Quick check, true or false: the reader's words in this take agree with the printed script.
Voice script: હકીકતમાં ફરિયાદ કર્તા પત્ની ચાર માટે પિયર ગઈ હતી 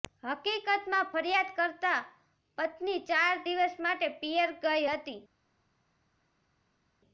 false